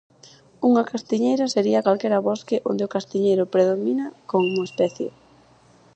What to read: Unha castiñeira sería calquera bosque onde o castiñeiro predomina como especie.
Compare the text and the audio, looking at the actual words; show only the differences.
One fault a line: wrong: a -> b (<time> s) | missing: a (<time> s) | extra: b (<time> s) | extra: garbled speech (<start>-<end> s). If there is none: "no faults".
no faults